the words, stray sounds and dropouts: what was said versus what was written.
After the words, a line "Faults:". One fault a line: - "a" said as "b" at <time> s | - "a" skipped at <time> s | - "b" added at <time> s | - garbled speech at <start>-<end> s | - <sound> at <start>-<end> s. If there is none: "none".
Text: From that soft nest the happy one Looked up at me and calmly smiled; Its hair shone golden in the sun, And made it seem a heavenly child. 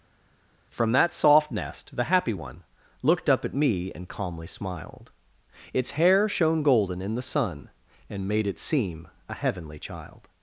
From that soft nest the happy one Looked up at me and calmly smiled; Its hair shone golden in the sun, And made it seem a heavenly child.
Faults:
none